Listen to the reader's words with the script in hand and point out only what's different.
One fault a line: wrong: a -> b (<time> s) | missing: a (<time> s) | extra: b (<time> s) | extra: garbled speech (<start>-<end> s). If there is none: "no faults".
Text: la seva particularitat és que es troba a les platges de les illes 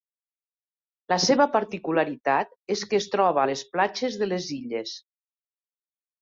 no faults